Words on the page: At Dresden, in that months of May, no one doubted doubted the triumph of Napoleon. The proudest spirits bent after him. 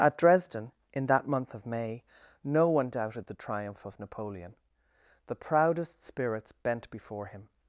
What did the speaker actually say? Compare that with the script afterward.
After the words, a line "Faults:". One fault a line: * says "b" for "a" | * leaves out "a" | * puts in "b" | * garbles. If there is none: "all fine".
At Dresden, in that month of May, no one doubted the triumph of Napoleon. The proudest spirits bent before him.
Faults:
* says "month" for "months"
* leaves out "doubted"
* says "before" for "after"